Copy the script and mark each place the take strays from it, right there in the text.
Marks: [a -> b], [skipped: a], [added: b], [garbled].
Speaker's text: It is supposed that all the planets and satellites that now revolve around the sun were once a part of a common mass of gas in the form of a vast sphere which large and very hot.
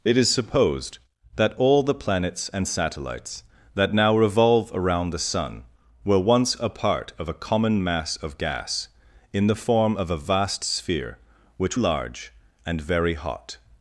It is supposed that all the planets and satellites that now revolve around the sun were once a part of a common mass of gas in the form of a vast sphere which large and very hot.